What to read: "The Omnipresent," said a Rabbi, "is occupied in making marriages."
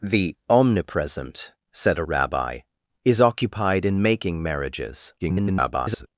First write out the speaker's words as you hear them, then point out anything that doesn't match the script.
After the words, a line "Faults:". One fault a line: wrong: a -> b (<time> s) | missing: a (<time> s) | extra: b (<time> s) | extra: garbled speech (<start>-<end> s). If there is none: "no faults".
"The Omnipresent," said a Rabbi, "is occupied in making marriages." [garbled]
Faults:
extra: garbled speech (5.2-6.1 s)